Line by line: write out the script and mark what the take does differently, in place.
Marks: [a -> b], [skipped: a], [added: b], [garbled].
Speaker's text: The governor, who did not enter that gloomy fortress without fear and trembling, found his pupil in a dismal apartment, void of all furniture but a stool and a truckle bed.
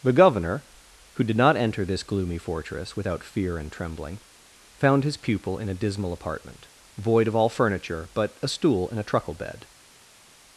The governor, who did not enter [that -> this] gloomy fortress without fear and trembling, found his pupil in a dismal apartment, void of all furniture but a stool and a truckle bed.